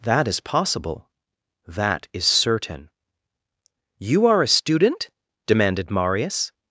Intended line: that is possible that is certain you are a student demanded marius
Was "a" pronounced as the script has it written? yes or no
yes